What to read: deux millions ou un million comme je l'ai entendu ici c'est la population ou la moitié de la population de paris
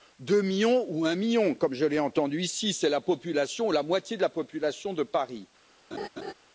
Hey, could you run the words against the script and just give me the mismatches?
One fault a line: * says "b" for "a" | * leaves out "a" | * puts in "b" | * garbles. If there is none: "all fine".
all fine